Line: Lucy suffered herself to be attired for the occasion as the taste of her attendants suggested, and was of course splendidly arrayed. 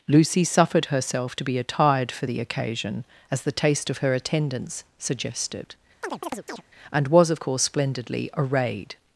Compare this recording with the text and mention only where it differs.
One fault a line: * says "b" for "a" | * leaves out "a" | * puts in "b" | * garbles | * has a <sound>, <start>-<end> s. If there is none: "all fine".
* has a chirp, 6.0-6.6 s